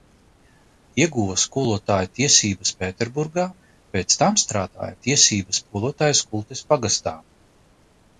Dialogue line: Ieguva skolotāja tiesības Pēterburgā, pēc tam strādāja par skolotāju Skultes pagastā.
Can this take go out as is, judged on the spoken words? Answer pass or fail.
fail